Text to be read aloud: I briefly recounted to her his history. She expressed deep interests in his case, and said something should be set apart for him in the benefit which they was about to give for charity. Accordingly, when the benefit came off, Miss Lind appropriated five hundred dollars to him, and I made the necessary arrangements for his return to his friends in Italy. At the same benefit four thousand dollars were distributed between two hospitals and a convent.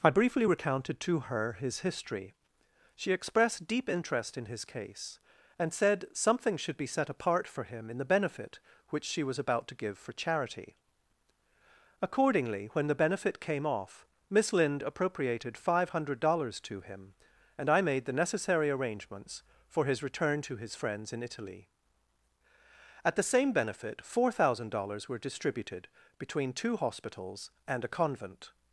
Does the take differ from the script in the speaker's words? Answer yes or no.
yes